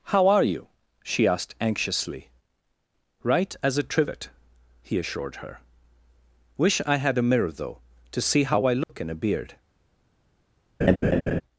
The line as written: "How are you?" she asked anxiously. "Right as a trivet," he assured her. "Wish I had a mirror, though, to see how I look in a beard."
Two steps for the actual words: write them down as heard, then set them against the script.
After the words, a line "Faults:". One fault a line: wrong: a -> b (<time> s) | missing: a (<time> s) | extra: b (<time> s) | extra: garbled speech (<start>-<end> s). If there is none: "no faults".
"How are you?" she asked anxiously. "Right as a trivet," he assured her. "Wish I had a mirror, though, to see how I look in a beard."
Faults:
no faults